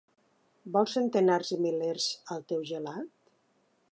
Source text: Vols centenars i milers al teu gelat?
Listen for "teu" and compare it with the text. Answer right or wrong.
right